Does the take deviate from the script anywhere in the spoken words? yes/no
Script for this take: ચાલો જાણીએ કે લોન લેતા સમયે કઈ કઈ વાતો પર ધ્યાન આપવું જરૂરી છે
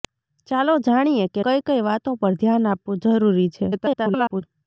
yes